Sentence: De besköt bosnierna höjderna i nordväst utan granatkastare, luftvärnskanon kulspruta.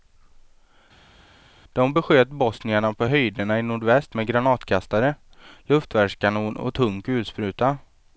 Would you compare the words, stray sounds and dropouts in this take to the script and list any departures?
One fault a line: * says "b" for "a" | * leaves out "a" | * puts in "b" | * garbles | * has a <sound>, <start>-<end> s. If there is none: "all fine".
* puts in "på"
* says "med" for "utan"
* puts in "och tung"